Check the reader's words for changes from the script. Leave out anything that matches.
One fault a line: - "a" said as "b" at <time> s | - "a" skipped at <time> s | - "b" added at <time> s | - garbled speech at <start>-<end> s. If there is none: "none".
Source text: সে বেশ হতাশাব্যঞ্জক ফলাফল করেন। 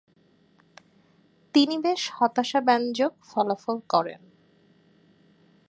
- "সে" said as "তিনি" at 1.5 s